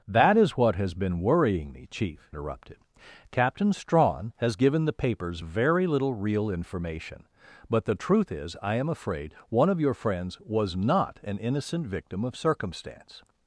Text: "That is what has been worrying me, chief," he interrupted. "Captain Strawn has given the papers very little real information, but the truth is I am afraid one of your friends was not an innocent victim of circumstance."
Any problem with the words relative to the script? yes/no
yes